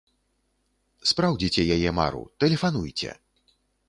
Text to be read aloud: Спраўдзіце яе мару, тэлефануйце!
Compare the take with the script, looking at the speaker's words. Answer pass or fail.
pass